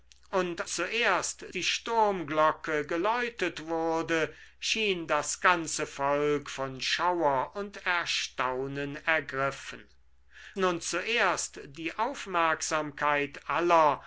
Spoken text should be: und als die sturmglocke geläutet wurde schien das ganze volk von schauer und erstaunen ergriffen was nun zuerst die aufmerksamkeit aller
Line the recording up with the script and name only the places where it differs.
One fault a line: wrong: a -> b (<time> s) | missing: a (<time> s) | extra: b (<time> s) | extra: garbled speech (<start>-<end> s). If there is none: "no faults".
wrong: als -> zuerst (0.7 s)
missing: was (9.9 s)